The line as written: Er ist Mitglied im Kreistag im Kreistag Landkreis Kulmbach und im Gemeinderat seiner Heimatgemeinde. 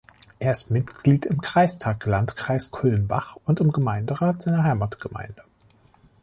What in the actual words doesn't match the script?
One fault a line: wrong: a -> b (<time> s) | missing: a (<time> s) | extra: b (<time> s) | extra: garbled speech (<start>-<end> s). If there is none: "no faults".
missing: im Kreistag (2.0 s)